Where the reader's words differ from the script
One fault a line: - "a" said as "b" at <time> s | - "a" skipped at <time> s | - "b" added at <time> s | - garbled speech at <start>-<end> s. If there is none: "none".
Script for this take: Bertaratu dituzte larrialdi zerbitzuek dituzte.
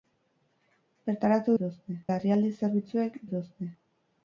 none